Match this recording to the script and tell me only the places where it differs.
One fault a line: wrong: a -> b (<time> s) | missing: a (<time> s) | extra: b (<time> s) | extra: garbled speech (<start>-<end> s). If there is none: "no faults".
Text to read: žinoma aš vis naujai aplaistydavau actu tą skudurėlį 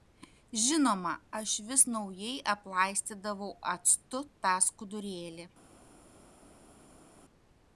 no faults